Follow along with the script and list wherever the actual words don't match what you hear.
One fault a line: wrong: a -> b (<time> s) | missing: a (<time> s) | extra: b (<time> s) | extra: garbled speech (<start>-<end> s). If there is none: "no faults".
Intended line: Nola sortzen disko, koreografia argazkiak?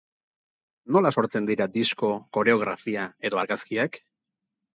extra: dira (1.5 s)
extra: edo (3.3 s)